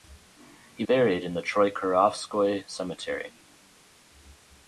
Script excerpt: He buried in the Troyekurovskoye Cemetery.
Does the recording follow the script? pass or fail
pass